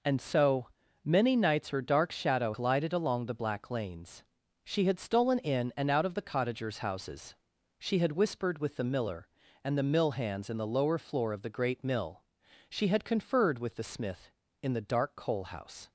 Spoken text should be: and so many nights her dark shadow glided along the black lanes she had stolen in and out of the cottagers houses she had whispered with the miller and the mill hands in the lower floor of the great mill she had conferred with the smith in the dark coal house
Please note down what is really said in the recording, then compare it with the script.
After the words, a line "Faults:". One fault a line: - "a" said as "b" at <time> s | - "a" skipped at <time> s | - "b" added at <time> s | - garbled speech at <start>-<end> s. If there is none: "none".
and so many nights her dark shadow glided along the black lanes she had stolen in and out of the cottagers houses she had whispered with the miller and the mill hands in the lower floor of the great mill she had conferred with the smith in the dark coal house
Faults:
none